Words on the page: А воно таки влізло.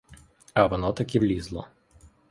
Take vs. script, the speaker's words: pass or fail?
pass